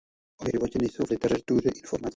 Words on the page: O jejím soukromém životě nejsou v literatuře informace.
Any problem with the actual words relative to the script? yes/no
yes